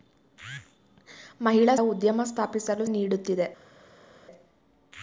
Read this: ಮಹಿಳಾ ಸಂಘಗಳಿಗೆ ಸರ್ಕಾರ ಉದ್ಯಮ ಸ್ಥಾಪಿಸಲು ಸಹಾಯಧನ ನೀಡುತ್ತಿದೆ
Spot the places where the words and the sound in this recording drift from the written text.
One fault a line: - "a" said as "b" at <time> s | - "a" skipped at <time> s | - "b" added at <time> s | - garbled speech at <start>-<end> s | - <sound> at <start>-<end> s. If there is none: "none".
- "ಸಂಘಗಳಿಗೆ ಸರ್ಕಾರ" skipped at 1.8 s
- "ಸಹಾಯಧನ" skipped at 2.9 s